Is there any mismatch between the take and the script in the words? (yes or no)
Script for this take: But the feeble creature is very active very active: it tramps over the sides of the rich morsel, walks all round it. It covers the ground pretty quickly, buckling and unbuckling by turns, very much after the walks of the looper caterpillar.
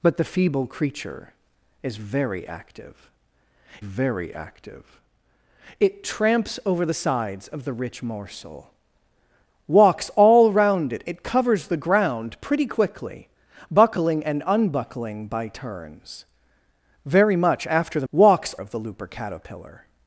no